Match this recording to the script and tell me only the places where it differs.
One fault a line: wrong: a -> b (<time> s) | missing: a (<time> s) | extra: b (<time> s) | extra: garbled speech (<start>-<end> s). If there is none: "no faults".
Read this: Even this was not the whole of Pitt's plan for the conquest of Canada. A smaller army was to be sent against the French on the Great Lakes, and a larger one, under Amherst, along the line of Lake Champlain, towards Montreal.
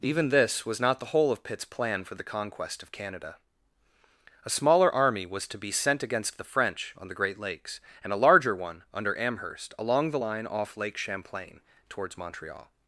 wrong: of -> off (10.5 s)